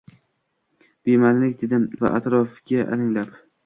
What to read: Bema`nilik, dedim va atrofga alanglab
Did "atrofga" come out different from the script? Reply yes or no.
no